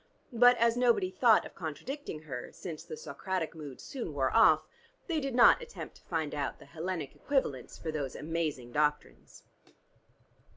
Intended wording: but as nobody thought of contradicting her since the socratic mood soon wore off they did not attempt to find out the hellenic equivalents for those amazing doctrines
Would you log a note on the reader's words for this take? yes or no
no